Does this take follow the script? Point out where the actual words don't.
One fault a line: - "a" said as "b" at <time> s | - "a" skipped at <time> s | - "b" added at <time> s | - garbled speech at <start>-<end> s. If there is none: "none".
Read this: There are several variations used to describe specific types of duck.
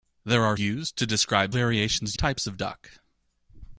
- "several variations" skipped at 0.6 s
- "specific" said as "variations" at 1.5 s